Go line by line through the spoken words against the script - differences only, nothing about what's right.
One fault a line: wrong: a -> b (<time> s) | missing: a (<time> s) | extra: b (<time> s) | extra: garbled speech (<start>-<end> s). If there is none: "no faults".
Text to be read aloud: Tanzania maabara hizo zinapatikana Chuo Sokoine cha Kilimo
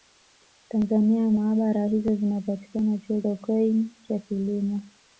no faults